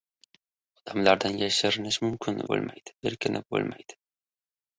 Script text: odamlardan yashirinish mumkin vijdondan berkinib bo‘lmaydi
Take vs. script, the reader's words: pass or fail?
fail